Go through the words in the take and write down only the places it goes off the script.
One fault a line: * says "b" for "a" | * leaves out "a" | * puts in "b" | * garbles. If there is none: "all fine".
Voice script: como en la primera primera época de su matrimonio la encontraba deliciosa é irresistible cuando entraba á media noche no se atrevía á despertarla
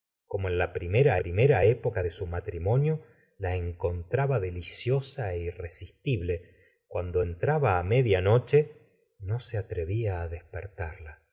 all fine